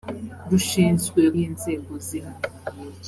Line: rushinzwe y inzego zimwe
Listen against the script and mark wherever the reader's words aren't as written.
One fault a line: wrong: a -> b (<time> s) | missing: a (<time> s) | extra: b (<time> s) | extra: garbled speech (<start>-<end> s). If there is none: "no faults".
no faults